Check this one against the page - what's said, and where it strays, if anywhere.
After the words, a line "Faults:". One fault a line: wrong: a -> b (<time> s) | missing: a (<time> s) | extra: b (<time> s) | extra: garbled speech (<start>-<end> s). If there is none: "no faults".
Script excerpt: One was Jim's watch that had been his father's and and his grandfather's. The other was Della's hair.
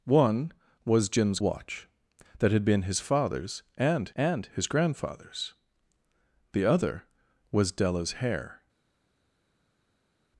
One was Jim's watch that had been his father's and and his grandfather's. The other was Della's hair.
Faults:
no faults